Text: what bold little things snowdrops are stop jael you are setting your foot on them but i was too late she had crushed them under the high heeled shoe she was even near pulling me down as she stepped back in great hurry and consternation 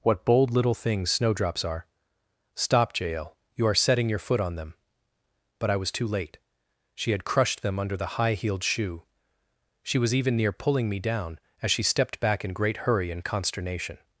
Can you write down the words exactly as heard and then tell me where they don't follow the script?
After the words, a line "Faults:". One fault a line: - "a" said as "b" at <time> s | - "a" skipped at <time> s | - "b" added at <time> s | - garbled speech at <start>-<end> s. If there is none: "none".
what bold little things snowdrops are stop jael you are setting your foot on them but i was too late she had crushed them under the high heeled shoe she was even near pulling me down as she stepped back in great hurry and consternation
Faults:
none